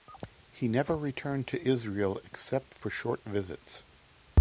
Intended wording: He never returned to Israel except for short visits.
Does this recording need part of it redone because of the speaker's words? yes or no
no